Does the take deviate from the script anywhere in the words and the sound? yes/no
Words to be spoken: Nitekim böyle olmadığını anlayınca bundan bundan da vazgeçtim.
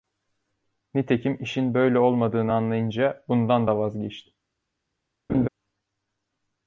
yes